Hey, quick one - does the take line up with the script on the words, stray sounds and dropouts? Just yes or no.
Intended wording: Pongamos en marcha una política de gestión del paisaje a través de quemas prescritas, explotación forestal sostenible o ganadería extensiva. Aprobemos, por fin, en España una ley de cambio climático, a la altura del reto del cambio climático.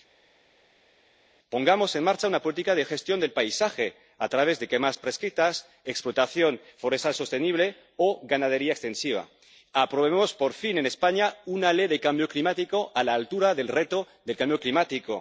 yes